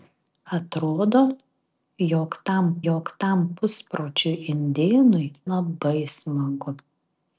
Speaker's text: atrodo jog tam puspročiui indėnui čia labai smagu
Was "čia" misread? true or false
true